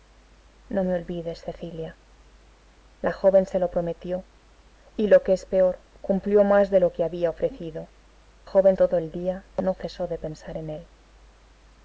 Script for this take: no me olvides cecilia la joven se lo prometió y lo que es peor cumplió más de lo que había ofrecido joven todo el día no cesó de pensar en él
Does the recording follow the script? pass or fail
pass